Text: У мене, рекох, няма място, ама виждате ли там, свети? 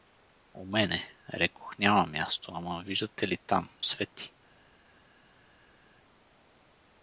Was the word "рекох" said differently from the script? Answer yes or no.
no